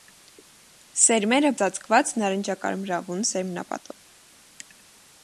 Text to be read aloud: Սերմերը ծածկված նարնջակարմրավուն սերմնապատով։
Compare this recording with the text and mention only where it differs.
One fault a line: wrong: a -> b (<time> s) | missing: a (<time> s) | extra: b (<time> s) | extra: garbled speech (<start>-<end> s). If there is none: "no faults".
no faults